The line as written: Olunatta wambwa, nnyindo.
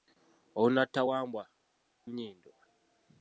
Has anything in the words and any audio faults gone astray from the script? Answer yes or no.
no